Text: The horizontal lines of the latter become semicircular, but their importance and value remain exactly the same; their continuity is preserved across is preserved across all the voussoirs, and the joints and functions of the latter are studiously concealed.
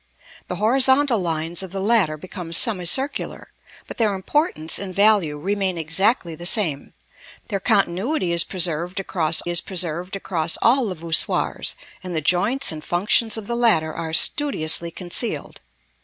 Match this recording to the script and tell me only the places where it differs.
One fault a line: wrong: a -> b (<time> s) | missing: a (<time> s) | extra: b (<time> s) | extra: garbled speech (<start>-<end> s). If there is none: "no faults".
no faults